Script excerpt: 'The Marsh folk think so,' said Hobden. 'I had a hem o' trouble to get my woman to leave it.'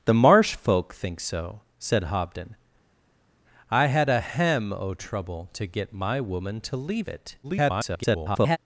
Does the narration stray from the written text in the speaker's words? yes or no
yes